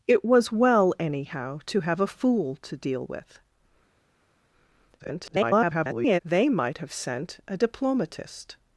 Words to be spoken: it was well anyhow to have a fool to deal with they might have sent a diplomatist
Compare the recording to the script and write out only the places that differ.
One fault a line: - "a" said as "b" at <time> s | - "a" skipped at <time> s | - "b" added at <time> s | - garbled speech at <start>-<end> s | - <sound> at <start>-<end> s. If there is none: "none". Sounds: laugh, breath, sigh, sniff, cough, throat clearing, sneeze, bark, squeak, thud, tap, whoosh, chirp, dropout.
- garbled speech at 5.0-6.2 s